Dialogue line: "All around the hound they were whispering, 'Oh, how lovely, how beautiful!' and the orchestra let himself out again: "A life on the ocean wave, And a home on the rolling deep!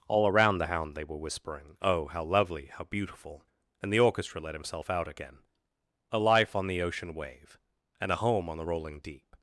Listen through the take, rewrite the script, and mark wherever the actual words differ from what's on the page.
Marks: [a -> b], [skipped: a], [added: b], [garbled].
"All around the hound they were whispering, 'Oh, how lovely, how beautiful!' and the orchestra let himself out again: "A life on the ocean wave, And a home on the rolling deep!